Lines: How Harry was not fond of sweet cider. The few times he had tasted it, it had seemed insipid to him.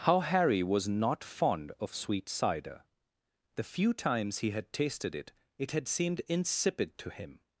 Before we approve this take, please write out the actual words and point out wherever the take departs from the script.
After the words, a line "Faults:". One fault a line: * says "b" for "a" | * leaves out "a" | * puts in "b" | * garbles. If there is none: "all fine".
How Harry was not fond of sweet cider. The few times he had tasted it, it had seemed insipid to him.
Faults:
all fine